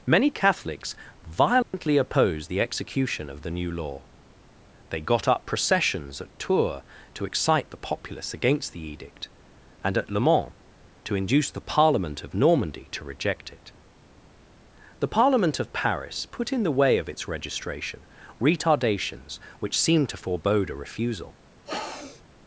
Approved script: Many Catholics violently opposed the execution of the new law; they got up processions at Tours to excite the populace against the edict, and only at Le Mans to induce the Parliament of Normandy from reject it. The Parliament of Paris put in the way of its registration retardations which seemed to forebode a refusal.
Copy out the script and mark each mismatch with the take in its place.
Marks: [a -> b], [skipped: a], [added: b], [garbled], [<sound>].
Many Catholics violently [dropout] opposed the execution of the new law; they got up processions at Tours to excite the populace against the edict, and [skipped: only] at Le Mans to induce the Parliament of Normandy [from -> to] reject it. The Parliament of Paris put in the way of its registration retardations which seemed to forebode a refusal. [sniff]